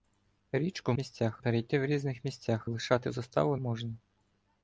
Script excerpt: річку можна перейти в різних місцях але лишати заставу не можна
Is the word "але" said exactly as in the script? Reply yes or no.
no